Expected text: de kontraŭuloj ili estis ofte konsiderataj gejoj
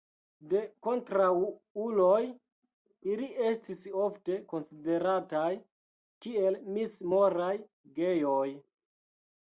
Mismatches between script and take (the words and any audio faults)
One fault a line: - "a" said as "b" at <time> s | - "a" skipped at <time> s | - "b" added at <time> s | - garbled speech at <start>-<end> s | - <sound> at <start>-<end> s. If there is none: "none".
- "kiel mis moraj" added at 6.3 s